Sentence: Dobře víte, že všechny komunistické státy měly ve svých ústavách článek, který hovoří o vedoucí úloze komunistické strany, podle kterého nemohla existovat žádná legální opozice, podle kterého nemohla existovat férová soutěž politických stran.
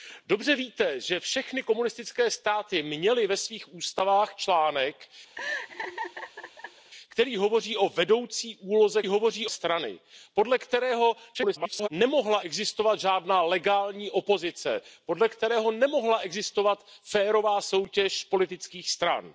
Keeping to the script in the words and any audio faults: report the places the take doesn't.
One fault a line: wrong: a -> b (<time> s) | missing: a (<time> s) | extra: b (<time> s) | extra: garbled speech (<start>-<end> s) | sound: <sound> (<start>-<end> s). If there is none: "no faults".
sound: laugh (5.3-6.9 s)
wrong: komunistické -> hovoří (9.1 s)
extra: garbled speech (11.3-11.9 s)